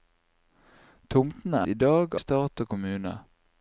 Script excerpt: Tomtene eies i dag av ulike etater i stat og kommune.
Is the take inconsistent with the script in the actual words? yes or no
yes